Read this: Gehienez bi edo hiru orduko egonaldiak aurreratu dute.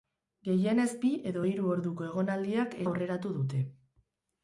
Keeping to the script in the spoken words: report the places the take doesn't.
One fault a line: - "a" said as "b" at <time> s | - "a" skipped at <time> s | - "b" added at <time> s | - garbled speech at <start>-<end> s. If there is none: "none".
none